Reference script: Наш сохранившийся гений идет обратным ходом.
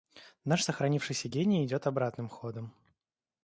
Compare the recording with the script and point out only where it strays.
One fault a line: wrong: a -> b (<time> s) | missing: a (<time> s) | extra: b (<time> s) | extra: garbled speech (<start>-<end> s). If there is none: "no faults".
no faults